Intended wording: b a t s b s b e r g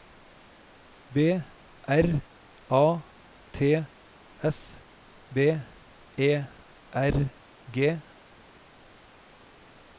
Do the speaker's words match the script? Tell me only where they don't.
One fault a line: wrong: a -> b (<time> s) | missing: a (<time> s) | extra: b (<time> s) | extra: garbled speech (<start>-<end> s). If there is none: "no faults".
extra: r (1.9 s)
missing: s b (5.6 s)